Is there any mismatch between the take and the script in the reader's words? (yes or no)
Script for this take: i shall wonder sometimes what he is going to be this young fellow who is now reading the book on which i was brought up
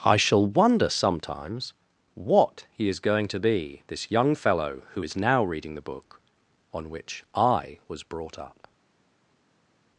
no